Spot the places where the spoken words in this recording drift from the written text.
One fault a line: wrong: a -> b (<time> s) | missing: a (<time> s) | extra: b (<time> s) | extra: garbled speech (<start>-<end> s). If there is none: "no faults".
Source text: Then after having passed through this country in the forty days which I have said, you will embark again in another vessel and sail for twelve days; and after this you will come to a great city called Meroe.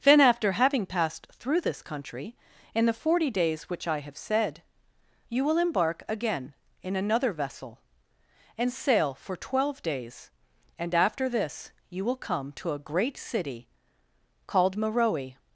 no faults